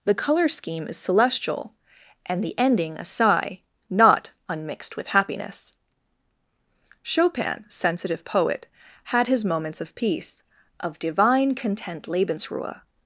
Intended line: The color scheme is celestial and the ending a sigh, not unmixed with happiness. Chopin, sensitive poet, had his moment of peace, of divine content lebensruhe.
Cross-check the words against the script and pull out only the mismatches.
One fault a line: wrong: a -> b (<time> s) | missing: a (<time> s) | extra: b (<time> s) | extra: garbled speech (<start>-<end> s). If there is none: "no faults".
wrong: moment -> moments (9.4 s)